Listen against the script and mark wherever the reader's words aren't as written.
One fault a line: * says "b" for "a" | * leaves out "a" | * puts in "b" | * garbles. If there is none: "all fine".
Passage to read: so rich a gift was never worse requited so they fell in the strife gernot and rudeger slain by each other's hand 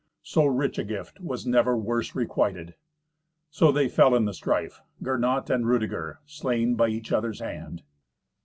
all fine